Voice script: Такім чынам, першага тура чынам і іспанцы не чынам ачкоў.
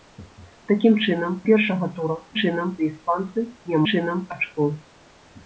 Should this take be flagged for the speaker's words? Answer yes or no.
no